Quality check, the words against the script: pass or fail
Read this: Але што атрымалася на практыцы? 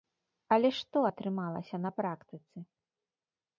pass